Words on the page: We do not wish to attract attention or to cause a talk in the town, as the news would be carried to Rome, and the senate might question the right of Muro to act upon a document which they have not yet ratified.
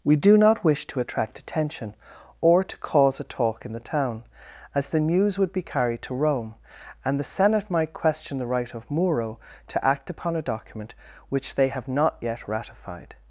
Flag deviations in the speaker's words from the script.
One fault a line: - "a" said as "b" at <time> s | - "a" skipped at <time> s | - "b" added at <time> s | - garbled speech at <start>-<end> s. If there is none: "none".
none